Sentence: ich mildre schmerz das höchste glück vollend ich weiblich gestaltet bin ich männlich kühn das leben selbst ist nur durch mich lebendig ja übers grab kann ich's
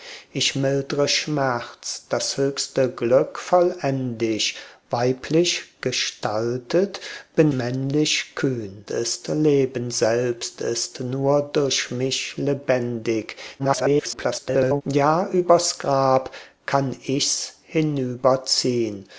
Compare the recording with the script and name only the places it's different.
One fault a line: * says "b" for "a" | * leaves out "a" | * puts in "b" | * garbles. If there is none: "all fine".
* leaves out "ich"
* says "ist" for "das"
* garbles